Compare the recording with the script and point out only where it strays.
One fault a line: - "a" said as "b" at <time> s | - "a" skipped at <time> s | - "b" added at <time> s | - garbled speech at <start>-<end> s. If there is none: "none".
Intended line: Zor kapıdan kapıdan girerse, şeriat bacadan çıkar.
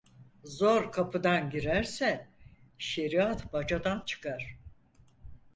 - "kapıdan" skipped at 1.5 s